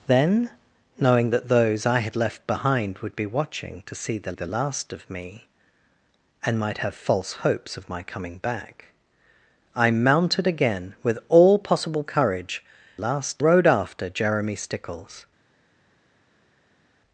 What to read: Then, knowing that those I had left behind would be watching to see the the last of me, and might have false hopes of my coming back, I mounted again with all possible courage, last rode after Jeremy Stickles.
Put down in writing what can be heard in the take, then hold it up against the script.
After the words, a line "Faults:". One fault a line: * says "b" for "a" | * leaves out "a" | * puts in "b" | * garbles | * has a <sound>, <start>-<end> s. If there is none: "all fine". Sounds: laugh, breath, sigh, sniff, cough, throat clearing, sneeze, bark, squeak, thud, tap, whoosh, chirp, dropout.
Then, knowing that those I had left behind would be watching to see the the last of me, and might have false hopes of my coming back, I mounted again with all possible courage, last rode after Jeremy Stickles.
Faults:
all fine